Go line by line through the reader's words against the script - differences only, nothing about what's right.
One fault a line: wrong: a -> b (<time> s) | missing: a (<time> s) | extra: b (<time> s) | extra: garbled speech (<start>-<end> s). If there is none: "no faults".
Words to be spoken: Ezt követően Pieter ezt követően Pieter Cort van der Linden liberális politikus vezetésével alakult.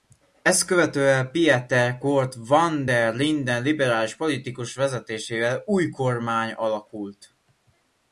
missing: ezt követően Pieter (2.0 s)
extra: új kormány (5.6 s)